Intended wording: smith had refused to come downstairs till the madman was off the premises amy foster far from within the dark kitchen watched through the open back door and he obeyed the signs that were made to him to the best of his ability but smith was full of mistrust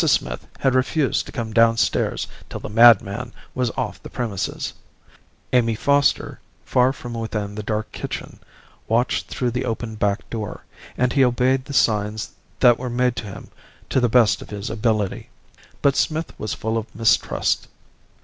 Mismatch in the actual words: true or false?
false